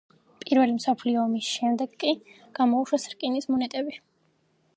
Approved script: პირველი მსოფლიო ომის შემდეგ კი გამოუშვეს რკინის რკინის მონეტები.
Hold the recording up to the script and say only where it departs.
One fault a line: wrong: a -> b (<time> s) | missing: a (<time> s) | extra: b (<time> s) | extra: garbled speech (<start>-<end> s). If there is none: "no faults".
missing: რკინის (3.5 s)